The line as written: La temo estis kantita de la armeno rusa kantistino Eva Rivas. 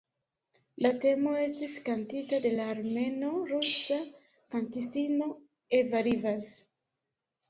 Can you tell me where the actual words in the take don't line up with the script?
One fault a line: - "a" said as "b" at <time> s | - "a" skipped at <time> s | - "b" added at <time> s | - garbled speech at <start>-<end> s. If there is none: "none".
none